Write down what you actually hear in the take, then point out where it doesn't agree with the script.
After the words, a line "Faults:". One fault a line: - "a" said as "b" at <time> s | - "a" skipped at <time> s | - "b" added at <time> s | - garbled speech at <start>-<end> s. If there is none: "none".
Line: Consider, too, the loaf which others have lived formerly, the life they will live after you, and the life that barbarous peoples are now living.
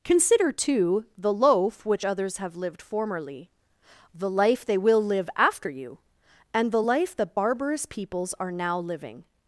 Consider, too, the loaf which others have lived formerly, the life they will live after you, and the life that barbarous peoples are now living.
Faults:
none